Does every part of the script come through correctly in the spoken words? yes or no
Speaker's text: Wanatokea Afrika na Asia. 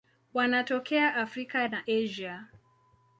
yes